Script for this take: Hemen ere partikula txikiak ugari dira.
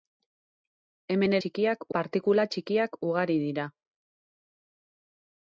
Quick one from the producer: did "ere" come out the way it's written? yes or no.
no